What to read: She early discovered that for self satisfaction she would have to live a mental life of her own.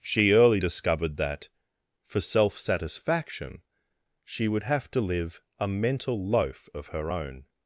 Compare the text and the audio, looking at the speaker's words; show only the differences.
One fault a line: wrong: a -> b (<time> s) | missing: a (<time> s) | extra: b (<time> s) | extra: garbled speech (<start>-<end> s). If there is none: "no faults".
wrong: life -> loaf (6.2 s)